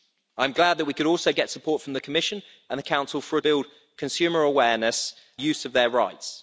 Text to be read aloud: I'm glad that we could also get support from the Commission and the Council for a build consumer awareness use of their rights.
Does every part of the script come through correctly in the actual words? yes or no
yes